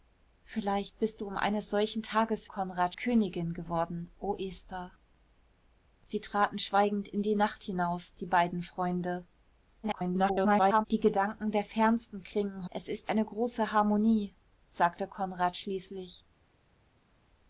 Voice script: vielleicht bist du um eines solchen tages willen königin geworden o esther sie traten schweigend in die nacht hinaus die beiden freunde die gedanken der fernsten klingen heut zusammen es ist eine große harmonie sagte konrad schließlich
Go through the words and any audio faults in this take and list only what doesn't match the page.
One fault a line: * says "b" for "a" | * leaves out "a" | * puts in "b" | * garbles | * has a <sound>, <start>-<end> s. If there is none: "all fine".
* says "konrad" for "willen"
* garbles
* leaves out "heut zusammen"